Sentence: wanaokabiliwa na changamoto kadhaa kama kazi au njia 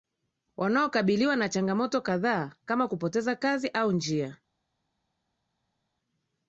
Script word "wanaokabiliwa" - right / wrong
right